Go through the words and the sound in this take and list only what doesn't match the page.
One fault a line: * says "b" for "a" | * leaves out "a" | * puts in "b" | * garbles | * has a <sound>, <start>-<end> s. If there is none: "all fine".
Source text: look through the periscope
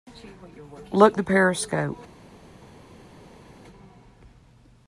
* leaves out "through"